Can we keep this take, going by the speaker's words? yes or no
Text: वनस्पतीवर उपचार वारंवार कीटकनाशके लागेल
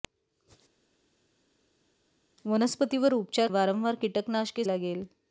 yes